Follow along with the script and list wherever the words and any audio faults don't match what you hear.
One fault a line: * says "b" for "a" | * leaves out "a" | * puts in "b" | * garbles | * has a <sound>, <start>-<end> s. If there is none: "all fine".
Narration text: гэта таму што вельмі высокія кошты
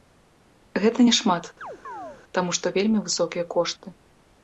* puts in "няшмат"
* has a chirp, 1.6-2.2 s